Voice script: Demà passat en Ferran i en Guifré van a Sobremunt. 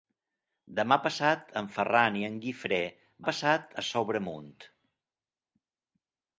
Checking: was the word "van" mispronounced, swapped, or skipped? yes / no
yes